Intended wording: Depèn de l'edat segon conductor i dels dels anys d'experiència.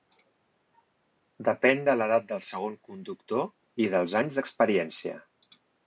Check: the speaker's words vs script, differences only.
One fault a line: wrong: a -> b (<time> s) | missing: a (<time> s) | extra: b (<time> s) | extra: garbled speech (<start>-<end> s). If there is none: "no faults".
extra: del (2.3 s)
missing: dels (4.2 s)